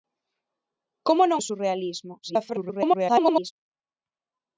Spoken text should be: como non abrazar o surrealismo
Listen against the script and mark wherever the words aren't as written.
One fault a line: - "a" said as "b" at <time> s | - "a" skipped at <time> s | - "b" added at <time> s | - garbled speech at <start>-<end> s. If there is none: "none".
- "abrazar" skipped at 1.4 s
- garbled speech at 2.2-3.5 s